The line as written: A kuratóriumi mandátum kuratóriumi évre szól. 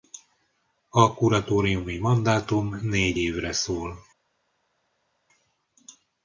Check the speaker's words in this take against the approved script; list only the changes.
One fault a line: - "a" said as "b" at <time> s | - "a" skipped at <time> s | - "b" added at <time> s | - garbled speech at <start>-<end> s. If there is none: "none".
- "kuratóriumi" said as "négy" at 2.8 s